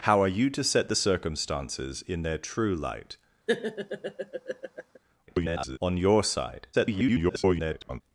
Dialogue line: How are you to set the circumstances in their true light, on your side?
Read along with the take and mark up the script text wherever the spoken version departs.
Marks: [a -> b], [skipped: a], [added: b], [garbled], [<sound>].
How are you to set the circumstances in their true light, [laugh] [garbled] on your side? [garbled]